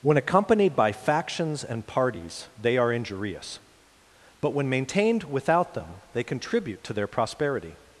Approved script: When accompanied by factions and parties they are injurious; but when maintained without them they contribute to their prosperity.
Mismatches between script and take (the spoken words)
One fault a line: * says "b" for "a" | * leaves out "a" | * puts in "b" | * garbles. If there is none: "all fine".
all fine